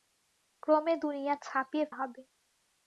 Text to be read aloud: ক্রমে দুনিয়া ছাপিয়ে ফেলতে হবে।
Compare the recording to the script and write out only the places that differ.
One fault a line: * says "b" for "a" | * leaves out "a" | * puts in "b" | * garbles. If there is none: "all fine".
* leaves out "ফেলতে"